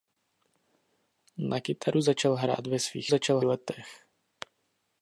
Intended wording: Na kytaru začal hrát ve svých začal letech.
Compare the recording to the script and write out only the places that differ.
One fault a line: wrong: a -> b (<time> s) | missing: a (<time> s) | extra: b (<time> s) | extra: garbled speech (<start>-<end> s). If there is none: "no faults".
no faults